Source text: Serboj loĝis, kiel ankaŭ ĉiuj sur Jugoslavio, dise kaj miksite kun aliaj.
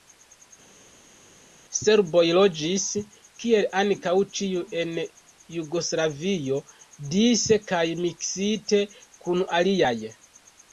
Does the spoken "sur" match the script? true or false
false